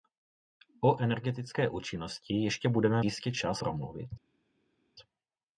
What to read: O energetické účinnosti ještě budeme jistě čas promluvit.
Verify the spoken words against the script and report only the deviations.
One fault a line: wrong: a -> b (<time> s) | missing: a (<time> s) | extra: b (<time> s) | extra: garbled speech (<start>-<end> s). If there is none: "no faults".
no faults